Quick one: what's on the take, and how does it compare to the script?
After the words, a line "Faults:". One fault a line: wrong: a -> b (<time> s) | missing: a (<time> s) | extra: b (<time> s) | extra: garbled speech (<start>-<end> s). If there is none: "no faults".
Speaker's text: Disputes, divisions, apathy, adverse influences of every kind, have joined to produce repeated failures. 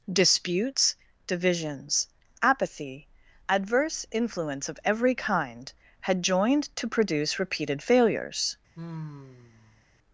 Disputes, divisions, apathy, adverse influence of every kind, had joined to produce repeated failures.
Faults:
wrong: influences -> influence (4.1 s)
wrong: have -> had (6.0 s)